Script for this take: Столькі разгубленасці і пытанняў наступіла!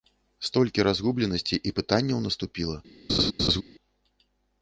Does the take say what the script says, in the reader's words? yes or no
yes